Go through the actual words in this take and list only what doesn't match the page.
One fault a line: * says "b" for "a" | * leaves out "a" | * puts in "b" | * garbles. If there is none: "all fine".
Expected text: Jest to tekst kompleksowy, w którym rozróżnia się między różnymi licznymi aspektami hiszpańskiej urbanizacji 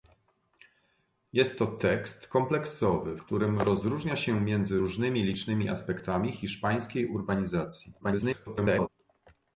* leaves out "w"
* garbles